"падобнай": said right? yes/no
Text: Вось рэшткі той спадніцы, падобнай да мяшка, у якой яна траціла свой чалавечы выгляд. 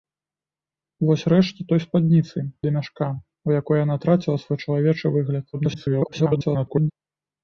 no